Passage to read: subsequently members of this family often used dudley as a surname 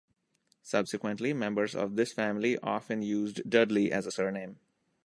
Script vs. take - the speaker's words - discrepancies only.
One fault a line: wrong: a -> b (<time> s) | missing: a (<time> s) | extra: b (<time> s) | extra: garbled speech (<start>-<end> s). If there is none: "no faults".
no faults